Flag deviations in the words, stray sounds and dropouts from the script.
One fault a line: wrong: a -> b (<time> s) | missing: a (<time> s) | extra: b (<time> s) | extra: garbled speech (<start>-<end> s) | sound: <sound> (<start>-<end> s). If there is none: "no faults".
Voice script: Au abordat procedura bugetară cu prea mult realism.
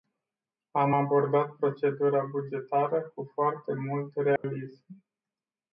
wrong: Au -> Am (0.7 s)
wrong: prea -> foarte (3.3 s)
sound: dropout (4.4-4.4 s)